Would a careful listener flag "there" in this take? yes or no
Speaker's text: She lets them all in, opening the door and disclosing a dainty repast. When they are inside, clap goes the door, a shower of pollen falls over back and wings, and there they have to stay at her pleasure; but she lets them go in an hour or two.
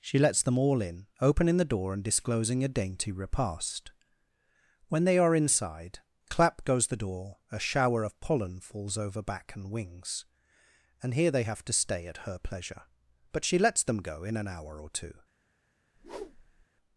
yes